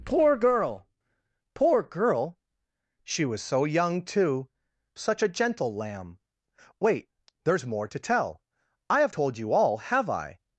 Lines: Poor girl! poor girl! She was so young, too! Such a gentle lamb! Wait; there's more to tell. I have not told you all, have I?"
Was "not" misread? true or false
true